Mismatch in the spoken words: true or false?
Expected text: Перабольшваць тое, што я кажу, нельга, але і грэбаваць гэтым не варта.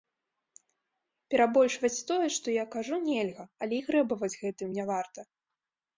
false